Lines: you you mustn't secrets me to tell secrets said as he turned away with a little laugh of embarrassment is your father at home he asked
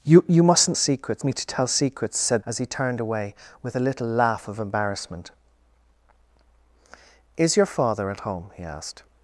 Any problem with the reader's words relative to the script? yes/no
no